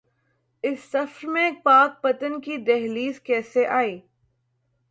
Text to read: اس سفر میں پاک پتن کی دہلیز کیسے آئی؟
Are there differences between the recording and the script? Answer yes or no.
no